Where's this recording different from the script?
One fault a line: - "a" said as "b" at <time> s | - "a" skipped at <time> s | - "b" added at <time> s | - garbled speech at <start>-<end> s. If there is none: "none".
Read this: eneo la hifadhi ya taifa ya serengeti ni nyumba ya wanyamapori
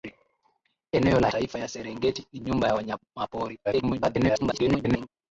- "hifadhi ya" skipped at 1.3 s
- garbled speech at 3.6-5.1 s